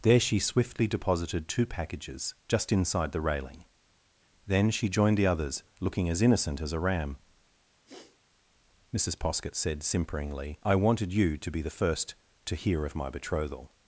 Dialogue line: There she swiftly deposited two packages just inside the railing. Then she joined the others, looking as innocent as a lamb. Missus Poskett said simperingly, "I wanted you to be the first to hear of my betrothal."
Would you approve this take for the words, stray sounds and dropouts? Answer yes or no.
no